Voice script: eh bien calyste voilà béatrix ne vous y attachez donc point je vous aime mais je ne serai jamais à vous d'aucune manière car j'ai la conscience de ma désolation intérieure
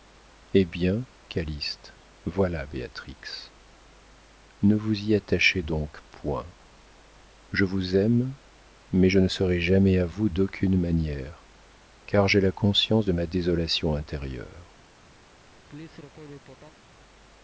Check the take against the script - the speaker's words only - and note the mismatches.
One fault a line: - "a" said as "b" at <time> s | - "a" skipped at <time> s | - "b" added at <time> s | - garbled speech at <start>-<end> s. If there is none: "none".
none